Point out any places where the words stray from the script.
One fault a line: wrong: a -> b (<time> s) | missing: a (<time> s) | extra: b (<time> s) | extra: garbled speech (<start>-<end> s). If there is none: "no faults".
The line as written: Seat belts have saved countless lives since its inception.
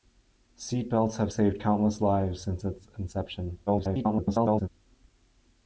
extra: garbled speech (3.7-4.7 s)